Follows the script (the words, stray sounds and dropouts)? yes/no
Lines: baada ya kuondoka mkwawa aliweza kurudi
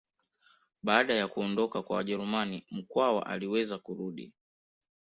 no